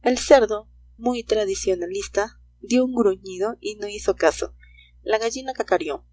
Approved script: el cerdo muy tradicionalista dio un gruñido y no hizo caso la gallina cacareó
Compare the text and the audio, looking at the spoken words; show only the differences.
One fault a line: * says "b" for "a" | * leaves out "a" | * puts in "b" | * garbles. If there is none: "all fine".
all fine